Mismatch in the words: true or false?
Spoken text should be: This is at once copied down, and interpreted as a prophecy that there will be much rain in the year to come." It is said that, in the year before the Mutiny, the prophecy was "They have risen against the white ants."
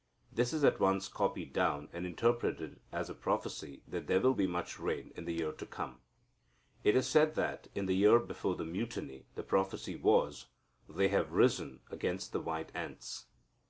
false